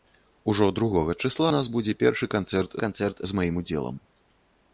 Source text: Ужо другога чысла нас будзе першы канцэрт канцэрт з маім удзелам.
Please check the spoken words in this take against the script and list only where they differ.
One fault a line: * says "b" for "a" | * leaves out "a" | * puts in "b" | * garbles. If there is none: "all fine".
all fine